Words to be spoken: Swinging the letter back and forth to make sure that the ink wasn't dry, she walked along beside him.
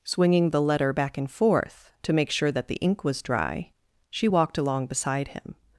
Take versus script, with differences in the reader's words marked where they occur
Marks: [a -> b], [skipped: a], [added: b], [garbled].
Swinging the letter back and forth to make sure that the ink [wasn't -> was] dry, she walked along beside him.